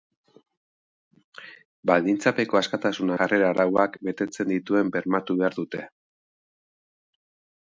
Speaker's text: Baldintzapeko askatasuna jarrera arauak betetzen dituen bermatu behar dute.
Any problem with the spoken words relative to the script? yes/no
no